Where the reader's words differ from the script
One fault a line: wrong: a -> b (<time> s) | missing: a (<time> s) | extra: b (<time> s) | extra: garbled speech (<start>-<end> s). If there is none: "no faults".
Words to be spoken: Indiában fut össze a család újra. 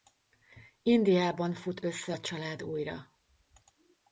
no faults